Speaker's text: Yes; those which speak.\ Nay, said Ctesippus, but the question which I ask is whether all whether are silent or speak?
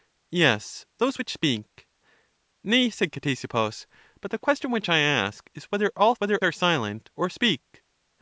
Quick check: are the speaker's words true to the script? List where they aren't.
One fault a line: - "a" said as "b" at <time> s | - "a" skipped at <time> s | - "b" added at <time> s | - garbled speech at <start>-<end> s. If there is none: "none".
none